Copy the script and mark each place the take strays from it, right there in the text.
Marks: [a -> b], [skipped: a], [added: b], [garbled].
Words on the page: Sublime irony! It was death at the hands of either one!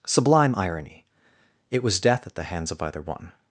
Sublime irony! It was death at the hands of either one!